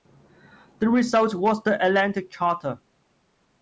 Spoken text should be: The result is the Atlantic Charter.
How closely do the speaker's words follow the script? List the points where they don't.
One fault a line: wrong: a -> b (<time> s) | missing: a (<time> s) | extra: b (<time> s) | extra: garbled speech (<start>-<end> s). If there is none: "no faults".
wrong: is -> was (1.4 s)